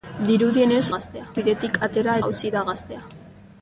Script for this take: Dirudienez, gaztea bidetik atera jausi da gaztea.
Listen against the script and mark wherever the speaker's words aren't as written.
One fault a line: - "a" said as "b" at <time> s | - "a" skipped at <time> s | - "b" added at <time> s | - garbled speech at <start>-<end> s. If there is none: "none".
none